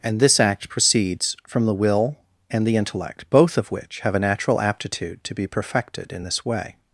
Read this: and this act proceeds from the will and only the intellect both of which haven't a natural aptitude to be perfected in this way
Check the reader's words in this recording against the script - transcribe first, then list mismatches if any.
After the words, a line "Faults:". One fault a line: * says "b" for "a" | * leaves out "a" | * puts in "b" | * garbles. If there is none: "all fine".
and this act proceeds from the will and the intellect both of which have a natural aptitude to be perfected in this way
Faults:
* leaves out "only"
* says "have" for "haven't"